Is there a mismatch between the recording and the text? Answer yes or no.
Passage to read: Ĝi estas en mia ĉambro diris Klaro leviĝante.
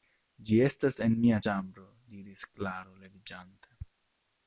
no